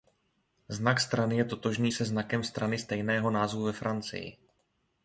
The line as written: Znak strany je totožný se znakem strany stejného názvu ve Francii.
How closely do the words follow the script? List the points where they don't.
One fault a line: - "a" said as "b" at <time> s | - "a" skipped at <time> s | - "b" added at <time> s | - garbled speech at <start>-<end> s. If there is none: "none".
none